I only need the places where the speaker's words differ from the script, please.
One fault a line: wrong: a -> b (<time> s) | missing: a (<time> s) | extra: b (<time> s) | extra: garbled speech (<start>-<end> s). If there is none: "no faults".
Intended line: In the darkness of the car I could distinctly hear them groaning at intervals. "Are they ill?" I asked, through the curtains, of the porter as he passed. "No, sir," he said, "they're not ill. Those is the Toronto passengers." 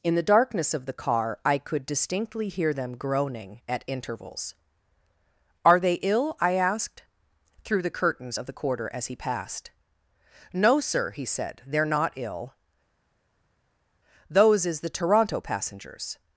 wrong: porter -> quarter (8.5 s)